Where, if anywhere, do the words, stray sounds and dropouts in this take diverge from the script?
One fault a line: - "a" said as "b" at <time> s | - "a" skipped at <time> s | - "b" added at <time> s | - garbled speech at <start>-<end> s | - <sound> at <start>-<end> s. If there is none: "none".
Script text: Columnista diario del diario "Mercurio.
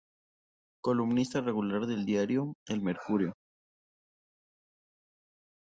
- "diario" said as "regular" at 1.4 s
- "El" added at 2.7 s